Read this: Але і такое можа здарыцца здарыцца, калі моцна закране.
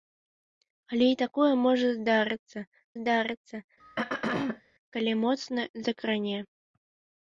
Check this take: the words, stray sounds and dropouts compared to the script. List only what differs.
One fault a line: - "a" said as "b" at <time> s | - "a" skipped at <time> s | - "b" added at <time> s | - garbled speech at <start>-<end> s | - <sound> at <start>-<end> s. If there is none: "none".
- throat clearing at 3.8-4.6 s